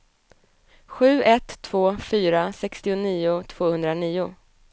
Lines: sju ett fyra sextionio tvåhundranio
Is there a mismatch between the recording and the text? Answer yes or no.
yes